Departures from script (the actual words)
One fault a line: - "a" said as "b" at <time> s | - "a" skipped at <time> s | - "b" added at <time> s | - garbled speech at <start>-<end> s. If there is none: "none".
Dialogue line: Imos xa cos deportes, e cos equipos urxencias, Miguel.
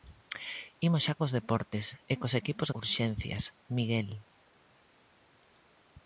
none